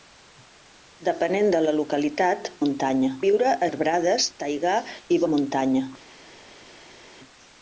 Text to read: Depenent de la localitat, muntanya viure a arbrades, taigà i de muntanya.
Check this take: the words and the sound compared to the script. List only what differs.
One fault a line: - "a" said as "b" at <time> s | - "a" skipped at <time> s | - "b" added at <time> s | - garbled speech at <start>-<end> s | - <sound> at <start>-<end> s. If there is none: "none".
none